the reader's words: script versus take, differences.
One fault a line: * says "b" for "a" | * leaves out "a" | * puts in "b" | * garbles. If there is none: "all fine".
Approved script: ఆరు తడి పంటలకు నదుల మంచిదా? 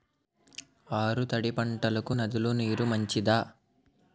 * puts in "నీరు"